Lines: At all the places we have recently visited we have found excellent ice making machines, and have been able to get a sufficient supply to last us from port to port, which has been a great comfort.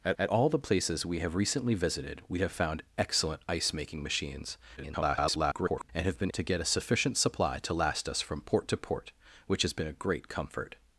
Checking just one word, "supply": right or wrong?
right